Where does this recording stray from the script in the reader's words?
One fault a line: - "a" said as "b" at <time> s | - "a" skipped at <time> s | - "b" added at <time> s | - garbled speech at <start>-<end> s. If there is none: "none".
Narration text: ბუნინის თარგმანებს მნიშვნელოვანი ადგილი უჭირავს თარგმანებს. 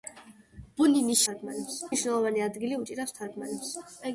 none